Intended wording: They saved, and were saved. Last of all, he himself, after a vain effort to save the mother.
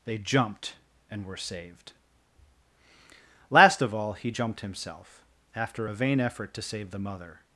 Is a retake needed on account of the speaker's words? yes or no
yes